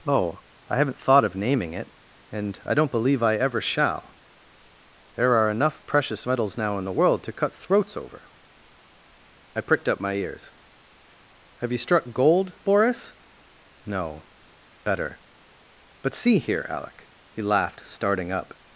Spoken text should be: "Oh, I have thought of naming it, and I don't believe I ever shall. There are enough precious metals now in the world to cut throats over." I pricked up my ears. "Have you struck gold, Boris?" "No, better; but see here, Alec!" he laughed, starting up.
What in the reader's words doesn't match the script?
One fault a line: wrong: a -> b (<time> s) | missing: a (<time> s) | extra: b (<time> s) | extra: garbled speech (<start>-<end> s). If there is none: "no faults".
wrong: have -> haven't (0.8 s)